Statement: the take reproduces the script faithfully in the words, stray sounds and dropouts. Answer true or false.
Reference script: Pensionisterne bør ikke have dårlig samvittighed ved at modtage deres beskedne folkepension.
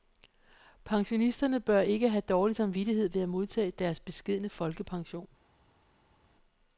true